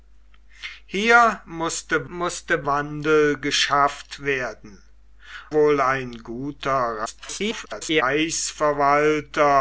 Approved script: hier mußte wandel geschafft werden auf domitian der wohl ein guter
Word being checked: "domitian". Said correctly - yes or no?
no